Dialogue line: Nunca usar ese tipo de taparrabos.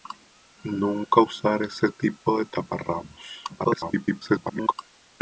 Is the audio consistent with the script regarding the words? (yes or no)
no